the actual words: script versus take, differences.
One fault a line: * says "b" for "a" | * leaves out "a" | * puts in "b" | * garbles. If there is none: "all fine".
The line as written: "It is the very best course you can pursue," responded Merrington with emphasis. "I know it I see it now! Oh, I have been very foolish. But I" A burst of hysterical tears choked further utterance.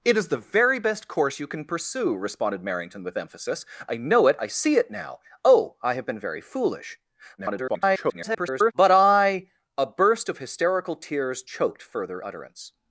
* garbles